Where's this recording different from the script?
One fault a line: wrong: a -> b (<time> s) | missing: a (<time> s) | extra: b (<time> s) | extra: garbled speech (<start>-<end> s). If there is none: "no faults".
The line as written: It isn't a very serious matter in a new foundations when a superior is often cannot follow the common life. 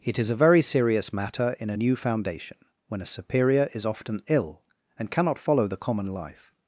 wrong: isn't -> is (0.2 s)
wrong: foundations -> foundation (2.0 s)
extra: ill and (4.3 s)